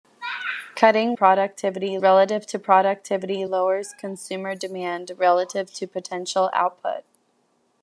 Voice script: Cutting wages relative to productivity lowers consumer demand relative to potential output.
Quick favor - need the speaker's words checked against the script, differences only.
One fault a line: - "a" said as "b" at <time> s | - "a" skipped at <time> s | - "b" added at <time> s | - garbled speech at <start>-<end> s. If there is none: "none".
- "wages" said as "productivity" at 1.1 s